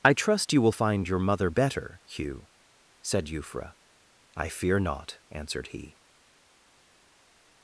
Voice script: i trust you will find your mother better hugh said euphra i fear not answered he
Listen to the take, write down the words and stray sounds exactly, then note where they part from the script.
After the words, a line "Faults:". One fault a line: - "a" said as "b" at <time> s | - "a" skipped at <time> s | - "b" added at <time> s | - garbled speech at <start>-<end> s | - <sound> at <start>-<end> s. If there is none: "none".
i trust you will find your mother better hugh said euphra i fear not answered he
Faults:
none